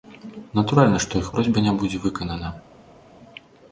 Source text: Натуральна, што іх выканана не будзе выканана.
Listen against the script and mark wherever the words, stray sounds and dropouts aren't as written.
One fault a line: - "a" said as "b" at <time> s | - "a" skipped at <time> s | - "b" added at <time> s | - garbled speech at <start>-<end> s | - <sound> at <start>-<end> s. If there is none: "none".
- "выканана" said as "просьба" at 1.3 s